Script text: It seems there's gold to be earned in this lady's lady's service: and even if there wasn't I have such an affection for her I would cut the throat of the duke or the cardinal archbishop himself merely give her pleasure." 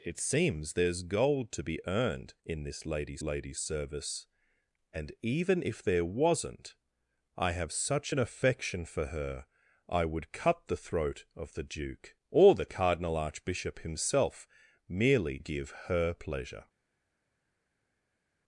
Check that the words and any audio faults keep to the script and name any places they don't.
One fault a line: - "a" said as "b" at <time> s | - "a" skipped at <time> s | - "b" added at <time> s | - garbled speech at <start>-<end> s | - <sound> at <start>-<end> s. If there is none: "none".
none